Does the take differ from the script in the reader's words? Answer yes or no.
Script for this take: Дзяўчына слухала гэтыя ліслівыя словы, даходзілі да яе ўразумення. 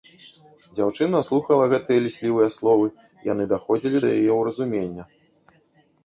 yes